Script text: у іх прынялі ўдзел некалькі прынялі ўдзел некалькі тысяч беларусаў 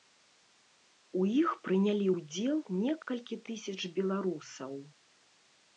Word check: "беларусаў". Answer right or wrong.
right